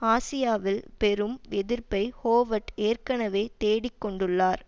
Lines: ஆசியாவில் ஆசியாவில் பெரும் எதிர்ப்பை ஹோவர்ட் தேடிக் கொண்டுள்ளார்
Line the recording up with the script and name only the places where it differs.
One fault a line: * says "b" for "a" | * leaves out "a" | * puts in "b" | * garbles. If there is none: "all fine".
* leaves out "ஆசியாவில்"
* puts in "ஏற்கனவே"